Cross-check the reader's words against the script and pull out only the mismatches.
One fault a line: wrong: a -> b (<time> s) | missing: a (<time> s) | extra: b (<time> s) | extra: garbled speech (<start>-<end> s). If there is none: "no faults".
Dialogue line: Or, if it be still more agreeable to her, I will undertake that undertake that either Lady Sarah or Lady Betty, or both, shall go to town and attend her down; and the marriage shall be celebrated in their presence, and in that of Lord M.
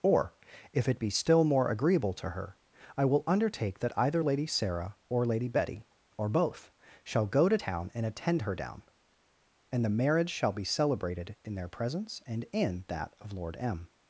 missing: undertake that (4.0 s)